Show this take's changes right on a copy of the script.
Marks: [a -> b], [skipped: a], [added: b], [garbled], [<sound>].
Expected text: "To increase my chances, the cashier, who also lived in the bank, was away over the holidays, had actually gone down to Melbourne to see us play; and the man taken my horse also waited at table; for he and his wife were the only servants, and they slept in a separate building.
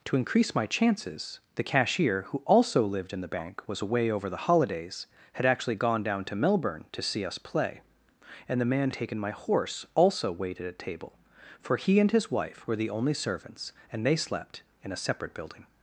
"To increase my chances, the cashier, who also lived in the bank, was away over the holidays, had actually gone down to Melbourne to see us play; and the man taken my horse also waited at table; for he and his wife were the only servants, and they slept in a separate building.